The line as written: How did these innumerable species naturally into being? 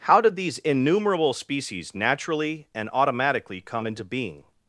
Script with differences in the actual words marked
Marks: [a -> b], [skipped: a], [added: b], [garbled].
How did these innumerable species naturally [added: and automatically come] into being?